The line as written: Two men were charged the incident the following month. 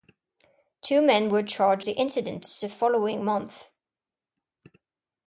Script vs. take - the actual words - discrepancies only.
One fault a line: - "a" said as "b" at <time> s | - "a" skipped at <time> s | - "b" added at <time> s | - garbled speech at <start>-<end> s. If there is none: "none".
none